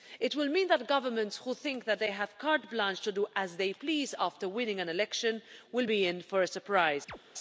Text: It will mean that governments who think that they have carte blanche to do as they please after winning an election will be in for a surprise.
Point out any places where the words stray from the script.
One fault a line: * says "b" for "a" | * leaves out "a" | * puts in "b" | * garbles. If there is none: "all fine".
all fine